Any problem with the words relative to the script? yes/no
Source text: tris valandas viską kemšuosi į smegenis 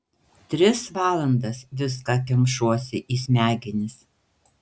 no